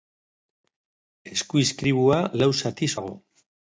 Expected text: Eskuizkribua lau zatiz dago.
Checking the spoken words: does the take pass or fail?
pass